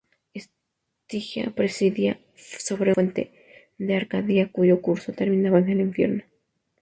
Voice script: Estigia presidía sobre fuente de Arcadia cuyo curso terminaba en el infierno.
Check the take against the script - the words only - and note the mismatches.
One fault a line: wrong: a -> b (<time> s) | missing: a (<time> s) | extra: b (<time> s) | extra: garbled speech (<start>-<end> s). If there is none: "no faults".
no faults